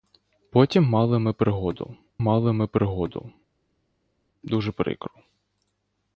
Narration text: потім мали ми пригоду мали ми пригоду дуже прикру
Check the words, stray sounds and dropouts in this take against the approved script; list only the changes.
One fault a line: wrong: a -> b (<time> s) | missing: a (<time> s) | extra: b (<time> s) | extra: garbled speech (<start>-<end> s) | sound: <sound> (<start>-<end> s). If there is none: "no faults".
no faults